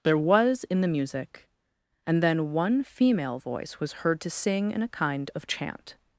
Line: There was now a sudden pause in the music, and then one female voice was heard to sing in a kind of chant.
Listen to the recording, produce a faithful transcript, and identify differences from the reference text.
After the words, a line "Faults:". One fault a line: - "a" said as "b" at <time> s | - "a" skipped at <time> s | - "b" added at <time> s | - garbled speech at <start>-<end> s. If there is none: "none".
There was in the music, and then one female voice was heard to sing in a kind of chant.
Faults:
- "now a sudden pause" skipped at 0.6 s